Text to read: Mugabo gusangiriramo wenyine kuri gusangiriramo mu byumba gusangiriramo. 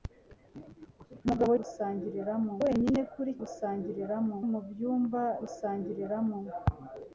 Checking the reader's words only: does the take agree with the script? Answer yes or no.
yes